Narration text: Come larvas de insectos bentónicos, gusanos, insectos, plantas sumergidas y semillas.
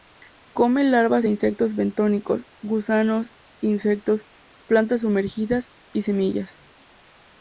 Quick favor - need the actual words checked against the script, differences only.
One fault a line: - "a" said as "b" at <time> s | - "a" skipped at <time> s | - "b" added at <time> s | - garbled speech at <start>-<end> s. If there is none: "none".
none